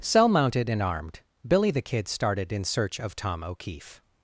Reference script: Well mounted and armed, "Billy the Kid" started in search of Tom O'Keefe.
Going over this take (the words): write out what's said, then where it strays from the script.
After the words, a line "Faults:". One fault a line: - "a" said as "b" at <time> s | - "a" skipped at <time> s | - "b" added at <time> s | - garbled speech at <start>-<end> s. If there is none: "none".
Cell mounted and armed, "Billy the Kid" started in search of Tom O'Keefe.
Faults:
- "Well" said as "Cell" at 0.0 s